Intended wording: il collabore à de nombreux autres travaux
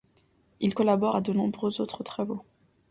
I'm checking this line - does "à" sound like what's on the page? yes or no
yes